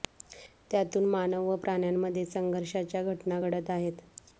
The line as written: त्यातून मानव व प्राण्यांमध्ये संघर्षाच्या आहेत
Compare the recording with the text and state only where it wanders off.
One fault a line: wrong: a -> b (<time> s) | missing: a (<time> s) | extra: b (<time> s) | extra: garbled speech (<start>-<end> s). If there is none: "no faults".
extra: घटना घडत (3.0 s)